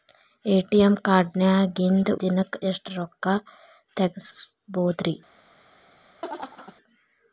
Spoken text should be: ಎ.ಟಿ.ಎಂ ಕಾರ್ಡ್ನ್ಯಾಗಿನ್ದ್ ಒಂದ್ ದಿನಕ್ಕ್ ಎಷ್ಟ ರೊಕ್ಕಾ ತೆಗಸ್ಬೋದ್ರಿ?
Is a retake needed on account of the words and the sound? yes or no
yes